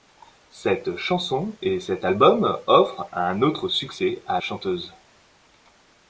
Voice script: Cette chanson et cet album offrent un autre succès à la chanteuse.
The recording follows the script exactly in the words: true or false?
false